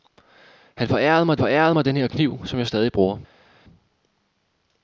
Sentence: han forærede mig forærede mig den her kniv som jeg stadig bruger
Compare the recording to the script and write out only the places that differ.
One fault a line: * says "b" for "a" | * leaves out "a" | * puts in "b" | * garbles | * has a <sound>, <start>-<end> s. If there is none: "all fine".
all fine